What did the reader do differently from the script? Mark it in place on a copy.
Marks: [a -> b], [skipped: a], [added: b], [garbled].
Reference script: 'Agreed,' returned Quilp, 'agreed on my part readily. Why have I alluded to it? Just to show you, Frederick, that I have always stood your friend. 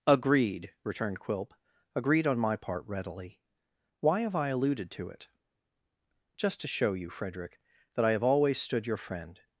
'Agreed,' returned Quilp, 'agreed on my part readily. Why have I alluded to it? Just to show you, Frederick, that I have always stood your friend.